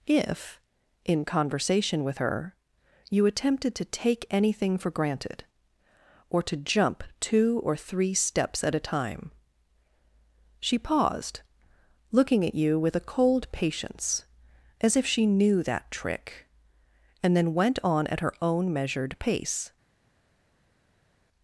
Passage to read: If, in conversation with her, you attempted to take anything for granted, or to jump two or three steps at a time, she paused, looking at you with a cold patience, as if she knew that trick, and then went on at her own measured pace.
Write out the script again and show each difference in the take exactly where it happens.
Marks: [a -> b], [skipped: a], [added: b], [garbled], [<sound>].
If, in conversation with her, you attempted to take anything for granted, or to jump two or three steps at a time, she paused, looking at you with a cold patience, as if she knew that trick, and then went on at her own measured pace.